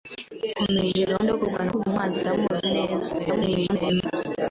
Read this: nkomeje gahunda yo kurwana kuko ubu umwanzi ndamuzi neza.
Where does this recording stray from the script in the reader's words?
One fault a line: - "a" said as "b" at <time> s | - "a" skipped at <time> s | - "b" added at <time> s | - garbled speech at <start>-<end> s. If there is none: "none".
- "kuko" skipped at 1.7 s
- garbled speech at 3.2-4.1 s